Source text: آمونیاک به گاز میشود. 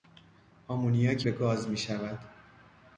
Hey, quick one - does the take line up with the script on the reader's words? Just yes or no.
yes